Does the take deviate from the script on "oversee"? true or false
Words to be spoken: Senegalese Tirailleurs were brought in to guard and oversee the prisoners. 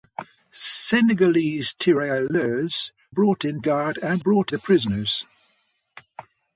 true